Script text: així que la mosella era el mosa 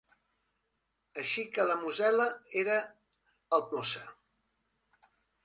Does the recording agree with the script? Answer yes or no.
yes